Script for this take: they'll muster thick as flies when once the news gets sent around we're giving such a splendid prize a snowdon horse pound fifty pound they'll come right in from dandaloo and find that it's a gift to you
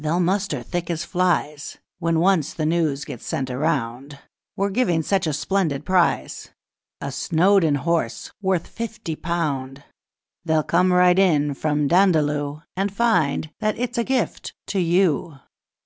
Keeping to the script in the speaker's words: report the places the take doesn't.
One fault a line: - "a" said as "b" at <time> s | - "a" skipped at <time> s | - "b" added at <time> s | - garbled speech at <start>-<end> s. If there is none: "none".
- "pound" said as "worth" at 8.4 s